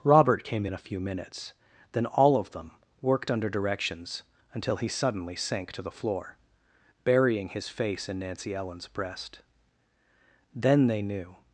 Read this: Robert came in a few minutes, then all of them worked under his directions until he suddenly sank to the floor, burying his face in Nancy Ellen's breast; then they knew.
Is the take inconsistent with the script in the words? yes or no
yes